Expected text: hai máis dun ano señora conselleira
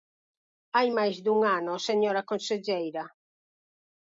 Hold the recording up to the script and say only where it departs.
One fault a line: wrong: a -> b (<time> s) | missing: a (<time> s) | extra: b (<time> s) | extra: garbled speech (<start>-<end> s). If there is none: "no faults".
no faults